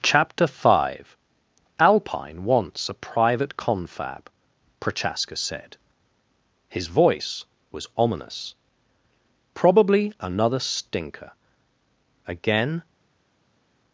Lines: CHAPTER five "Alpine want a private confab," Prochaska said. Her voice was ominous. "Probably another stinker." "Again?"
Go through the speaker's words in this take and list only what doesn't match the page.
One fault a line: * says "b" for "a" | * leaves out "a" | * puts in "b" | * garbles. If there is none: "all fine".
* says "wants" for "want"
* says "His" for "Her"